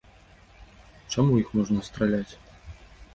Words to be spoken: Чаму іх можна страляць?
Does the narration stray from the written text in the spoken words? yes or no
no